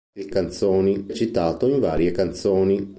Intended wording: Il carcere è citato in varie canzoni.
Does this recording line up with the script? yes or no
no